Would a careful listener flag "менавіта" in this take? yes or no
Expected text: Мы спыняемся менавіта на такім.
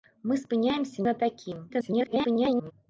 yes